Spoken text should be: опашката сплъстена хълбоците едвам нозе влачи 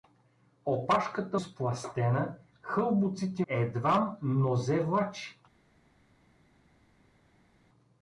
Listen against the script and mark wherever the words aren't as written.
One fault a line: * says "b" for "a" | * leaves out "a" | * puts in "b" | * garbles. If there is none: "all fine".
all fine